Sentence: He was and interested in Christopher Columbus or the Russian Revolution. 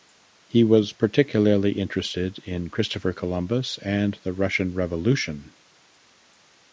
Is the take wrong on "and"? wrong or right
wrong